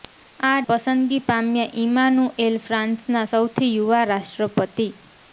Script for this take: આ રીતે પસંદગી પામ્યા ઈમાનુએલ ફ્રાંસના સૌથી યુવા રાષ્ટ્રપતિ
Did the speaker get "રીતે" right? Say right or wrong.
wrong